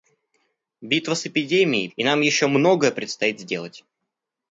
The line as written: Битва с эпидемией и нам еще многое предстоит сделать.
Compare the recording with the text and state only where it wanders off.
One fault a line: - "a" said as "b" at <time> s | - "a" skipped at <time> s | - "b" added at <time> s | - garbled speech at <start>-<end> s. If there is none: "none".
none